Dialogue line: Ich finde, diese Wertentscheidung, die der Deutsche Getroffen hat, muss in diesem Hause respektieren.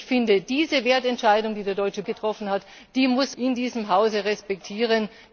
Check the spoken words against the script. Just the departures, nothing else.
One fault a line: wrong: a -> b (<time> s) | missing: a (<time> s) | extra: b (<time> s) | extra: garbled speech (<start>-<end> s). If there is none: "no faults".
no faults